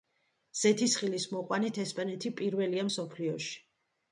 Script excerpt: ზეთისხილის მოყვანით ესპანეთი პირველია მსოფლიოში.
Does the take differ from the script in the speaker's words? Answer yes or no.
no